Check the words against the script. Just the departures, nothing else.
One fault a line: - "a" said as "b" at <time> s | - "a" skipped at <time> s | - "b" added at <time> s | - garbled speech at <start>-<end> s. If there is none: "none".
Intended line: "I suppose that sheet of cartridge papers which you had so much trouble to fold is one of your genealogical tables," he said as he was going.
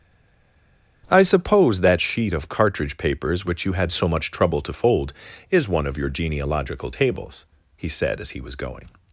none